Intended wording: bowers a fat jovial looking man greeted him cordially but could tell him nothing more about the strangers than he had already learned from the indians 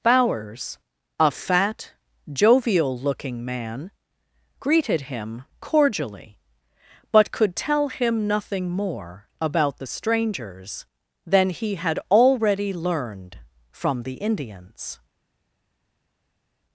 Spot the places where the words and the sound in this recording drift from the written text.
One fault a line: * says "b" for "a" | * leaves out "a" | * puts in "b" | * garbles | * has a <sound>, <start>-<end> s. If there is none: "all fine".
all fine